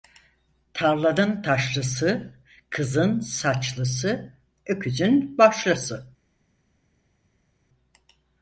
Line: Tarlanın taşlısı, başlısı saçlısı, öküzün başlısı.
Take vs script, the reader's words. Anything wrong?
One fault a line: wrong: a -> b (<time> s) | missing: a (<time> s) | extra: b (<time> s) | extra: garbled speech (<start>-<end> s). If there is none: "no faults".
wrong: başlısı -> kızın (2.7 s)